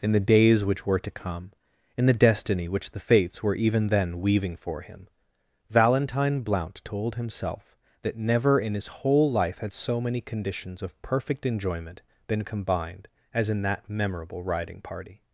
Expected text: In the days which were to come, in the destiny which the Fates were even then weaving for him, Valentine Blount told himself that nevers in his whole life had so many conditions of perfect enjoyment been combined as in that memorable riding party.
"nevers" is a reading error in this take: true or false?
true